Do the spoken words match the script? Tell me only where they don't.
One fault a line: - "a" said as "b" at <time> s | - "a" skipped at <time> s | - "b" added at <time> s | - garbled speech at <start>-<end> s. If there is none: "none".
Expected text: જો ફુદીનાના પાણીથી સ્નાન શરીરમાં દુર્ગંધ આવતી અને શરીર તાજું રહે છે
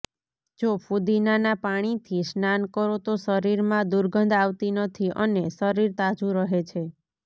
- "કરો તો" added at 2.7 s
- "નથી" added at 4.8 s